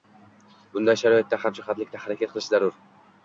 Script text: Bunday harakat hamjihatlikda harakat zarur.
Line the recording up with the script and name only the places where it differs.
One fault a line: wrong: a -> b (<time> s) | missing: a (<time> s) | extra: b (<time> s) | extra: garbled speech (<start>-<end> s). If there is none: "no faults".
wrong: harakat -> sharoitda (1.0 s)
extra: qilish (2.4 s)